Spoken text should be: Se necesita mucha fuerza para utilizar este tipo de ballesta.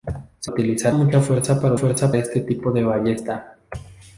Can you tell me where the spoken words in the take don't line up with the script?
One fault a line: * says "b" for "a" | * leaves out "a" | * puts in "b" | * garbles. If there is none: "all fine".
* says "utilizar" for "necesita"
* says "fuerza" for "utilizar"